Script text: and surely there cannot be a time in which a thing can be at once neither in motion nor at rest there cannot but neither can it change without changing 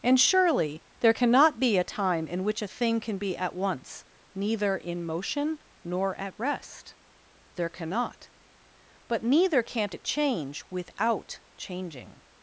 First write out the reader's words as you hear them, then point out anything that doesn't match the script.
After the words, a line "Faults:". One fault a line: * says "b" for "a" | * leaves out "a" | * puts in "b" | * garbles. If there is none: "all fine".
and surely there cannot be a time in which a thing can be at once neither in motion nor at rest there cannot but neither can't it change without changing
Faults:
* says "can't" for "can"